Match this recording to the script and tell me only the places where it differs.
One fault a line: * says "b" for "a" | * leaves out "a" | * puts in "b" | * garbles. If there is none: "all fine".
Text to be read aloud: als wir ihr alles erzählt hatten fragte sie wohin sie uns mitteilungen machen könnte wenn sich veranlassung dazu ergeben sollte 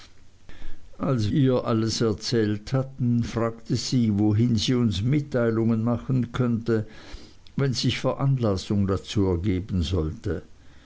* leaves out "wir"